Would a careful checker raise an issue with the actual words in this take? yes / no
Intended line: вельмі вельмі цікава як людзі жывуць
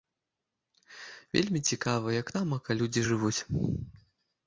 yes